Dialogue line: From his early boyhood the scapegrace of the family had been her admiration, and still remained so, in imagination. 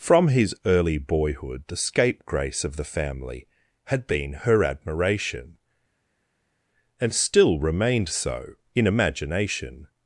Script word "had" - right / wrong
right